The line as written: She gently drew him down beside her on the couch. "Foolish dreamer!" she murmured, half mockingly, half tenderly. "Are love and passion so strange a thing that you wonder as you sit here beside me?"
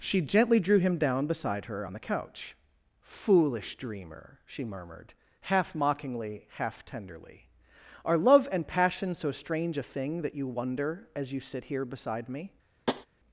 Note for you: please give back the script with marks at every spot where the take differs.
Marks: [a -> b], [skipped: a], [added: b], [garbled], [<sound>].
She gently drew him down beside her on the couch. "Foolish dreamer!" she murmured, half mockingly, half tenderly. "Are love and passion so strange a thing that you wonder as you sit here beside me?" [tap]